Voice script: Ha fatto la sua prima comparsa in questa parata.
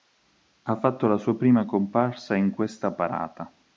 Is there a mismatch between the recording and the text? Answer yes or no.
no